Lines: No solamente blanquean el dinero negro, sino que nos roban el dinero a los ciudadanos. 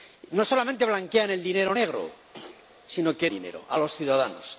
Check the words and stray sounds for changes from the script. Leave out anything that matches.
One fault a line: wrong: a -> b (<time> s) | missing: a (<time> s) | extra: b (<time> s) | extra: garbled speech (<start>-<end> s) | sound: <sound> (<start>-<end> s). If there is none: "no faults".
sound: throat clearing (2.3-2.7 s)
missing: nos roban el (3.3 s)